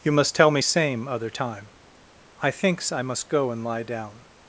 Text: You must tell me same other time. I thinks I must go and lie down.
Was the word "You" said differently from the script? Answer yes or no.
no